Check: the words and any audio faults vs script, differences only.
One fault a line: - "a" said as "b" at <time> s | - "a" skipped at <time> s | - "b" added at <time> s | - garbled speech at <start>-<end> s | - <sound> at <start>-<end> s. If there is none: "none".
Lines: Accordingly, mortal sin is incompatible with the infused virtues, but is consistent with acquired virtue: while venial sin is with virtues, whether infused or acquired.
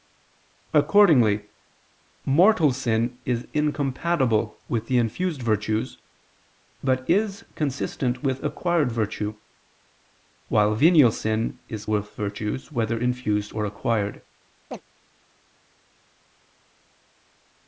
- chirp at 14.7-14.8 s